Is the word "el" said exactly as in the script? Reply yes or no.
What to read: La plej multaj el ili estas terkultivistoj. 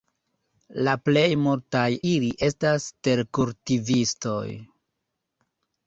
no